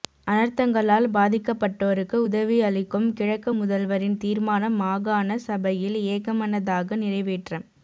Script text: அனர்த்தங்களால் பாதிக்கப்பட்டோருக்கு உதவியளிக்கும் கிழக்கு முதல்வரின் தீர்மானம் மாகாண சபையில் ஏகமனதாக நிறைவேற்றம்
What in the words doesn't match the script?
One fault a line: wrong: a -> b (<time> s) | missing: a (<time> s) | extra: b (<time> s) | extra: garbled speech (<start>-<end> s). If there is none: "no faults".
no faults